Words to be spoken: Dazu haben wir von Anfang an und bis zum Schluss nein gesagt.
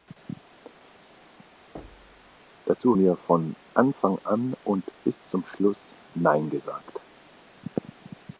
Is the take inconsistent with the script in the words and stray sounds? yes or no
yes